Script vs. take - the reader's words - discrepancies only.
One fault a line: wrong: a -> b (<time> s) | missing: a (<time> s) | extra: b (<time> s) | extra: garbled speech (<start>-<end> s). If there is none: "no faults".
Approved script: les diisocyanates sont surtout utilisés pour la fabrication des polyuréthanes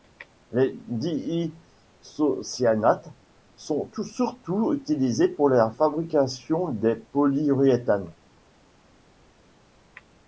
no faults